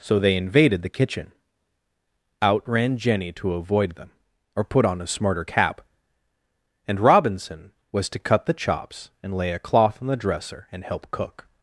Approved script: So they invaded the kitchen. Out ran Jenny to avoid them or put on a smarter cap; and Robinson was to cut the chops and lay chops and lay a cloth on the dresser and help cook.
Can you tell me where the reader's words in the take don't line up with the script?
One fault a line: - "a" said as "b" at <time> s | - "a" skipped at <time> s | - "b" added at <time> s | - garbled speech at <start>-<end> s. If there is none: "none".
- "chops and lay" skipped at 9.5 s